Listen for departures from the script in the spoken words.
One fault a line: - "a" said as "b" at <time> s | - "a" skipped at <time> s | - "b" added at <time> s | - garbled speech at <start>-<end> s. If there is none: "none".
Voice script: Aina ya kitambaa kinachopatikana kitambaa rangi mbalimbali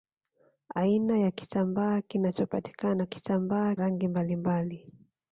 none